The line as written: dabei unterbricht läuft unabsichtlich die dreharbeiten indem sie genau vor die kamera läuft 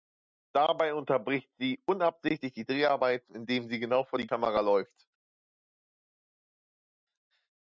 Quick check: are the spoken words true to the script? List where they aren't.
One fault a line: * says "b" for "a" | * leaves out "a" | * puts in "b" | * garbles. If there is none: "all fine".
* says "sie" for "läuft"